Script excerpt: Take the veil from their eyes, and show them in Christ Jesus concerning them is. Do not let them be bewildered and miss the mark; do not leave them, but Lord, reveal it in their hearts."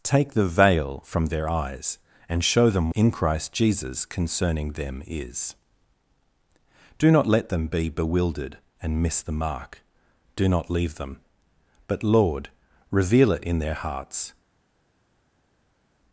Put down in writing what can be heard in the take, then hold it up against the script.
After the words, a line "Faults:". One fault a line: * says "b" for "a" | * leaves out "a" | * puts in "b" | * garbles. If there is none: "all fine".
Take the veil from their eyes, and show them in Christ Jesus concerning them is. Do not let them be bewildered and miss the mark; do not leave them, but Lord, reveal it in their hearts."
Faults:
all fine